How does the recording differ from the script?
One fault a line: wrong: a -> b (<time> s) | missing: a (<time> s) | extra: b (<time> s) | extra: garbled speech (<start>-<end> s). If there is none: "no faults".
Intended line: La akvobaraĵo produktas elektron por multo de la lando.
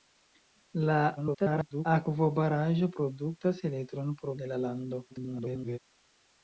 extra: garbled speech (1.2-1.9 s)
missing: multo (4.4 s)
extra: garbled speech (5.1-5.8 s)